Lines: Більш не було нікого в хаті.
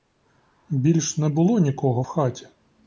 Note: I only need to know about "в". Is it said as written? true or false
true